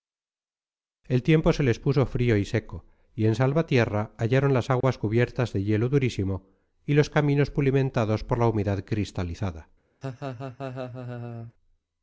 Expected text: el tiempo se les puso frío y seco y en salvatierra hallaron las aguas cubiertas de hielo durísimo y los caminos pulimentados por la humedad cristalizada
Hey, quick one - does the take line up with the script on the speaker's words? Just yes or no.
yes